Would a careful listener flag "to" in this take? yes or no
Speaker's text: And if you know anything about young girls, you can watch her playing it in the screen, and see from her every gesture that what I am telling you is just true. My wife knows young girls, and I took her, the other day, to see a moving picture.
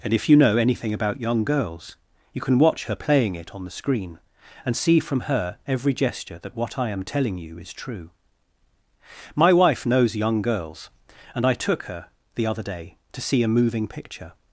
no